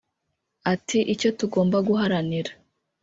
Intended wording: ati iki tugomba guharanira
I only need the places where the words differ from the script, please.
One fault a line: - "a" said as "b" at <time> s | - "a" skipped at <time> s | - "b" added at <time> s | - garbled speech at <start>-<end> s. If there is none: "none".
- "iki" said as "icyo" at 1.1 s